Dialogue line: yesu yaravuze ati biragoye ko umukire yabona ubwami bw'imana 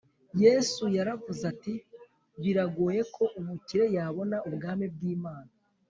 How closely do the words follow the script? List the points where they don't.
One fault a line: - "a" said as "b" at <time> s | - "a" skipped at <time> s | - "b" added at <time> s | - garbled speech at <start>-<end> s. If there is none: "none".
none